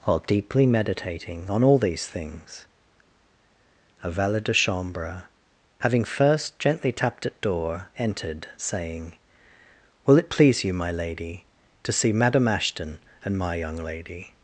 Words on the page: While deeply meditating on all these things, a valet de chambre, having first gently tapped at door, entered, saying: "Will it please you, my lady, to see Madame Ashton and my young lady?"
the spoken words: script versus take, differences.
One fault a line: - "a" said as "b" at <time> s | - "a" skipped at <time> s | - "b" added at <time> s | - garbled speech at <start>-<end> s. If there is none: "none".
none